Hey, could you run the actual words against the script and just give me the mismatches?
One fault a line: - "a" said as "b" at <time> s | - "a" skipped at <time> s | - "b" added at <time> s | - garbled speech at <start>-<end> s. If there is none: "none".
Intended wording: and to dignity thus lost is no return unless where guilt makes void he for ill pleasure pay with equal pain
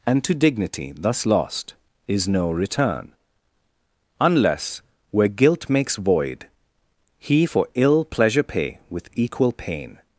none